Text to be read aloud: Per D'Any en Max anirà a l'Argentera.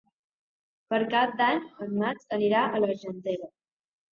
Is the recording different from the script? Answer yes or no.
yes